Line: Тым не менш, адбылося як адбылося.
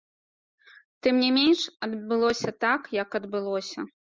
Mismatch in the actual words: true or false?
true